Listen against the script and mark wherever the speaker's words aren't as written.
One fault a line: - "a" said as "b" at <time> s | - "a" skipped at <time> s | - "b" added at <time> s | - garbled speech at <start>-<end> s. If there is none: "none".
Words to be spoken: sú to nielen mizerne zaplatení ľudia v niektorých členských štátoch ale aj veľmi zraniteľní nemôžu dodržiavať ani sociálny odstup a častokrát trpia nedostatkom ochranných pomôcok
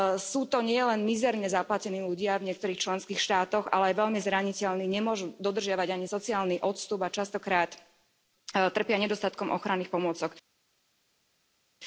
none